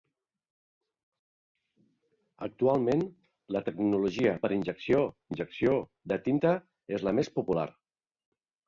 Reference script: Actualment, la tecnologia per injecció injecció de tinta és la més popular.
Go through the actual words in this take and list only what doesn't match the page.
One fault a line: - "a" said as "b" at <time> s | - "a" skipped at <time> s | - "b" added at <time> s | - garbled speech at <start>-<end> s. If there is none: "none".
none